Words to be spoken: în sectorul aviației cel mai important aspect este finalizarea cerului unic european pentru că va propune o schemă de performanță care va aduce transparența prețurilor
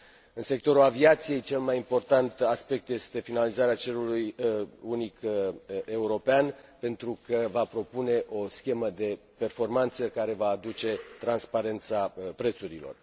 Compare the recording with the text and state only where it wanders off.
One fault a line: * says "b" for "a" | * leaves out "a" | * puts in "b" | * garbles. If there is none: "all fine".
all fine